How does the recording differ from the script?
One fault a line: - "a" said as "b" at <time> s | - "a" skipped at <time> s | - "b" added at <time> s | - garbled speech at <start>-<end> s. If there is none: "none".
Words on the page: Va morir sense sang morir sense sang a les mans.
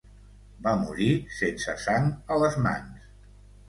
- "morir sense sang" skipped at 2.1 s